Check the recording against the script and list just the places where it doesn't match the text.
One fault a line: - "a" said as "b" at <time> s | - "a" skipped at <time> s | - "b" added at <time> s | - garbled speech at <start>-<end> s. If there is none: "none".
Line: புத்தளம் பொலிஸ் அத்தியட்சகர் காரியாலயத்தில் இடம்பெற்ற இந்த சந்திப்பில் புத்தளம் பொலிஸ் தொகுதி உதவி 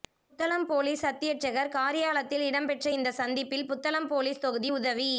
none